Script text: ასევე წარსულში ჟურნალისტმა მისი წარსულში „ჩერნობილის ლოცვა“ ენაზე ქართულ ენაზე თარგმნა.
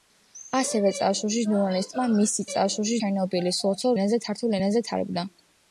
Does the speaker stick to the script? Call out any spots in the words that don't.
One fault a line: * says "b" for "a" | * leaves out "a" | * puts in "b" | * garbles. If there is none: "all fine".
all fine